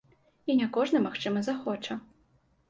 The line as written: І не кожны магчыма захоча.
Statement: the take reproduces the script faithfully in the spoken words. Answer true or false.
true